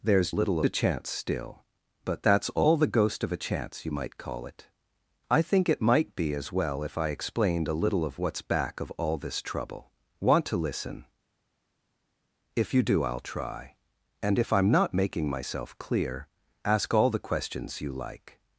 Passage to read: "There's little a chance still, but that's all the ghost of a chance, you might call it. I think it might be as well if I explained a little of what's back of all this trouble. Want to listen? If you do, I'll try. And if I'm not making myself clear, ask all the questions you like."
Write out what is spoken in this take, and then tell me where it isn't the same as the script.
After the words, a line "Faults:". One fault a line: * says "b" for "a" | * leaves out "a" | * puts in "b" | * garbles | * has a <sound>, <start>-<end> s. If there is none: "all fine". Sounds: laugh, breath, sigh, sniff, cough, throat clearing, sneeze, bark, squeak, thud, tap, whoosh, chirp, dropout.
"There's little a chance still, but that's all the ghost of a chance, you might call it. I think it might be as well if I explained a little of what's back of all this trouble. Want to listen? If you do, I'll try. And if I'm not making myself clear, ask all the questions you like."
Faults:
all fine